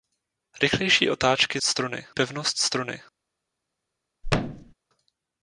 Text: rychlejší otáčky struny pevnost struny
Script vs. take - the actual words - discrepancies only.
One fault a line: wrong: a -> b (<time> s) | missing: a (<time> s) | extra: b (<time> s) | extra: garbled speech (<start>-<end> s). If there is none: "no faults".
no faults